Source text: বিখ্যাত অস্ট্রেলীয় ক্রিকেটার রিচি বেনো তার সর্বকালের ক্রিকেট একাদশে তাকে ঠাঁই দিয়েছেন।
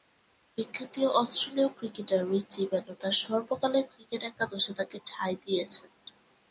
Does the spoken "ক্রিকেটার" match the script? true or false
true